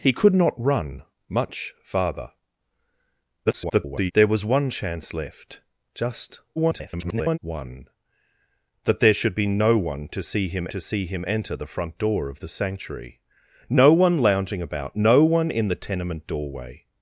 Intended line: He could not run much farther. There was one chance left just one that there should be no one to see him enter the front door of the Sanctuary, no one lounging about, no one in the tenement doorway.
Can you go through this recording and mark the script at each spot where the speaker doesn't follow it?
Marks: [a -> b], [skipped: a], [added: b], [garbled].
He could not run much farther. [garbled] There was one chance left just [garbled] one that there should be no one to see him [added: to see him] enter the front door of the Sanctuary, no one lounging about, no one in the tenement doorway.